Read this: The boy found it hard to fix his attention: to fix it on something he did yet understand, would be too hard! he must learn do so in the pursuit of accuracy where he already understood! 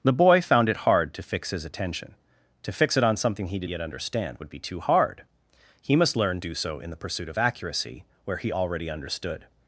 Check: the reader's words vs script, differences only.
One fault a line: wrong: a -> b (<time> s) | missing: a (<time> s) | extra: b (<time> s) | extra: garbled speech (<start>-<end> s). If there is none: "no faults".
no faults